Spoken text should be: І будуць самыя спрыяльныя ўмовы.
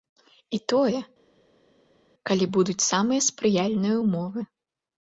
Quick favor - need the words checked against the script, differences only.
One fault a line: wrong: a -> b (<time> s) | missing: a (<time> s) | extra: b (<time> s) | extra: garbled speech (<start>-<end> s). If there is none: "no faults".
extra: тое калі (0.7 s)